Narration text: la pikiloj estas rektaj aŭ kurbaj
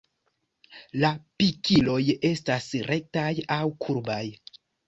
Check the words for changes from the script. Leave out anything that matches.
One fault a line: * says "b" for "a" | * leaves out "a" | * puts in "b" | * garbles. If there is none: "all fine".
all fine